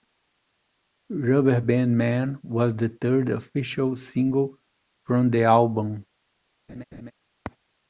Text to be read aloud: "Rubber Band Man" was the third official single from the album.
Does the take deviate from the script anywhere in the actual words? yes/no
no